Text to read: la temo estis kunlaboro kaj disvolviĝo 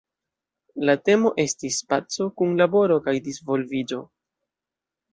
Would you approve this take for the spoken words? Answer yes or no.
no